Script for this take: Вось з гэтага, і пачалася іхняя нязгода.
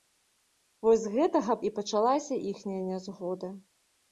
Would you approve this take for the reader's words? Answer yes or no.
yes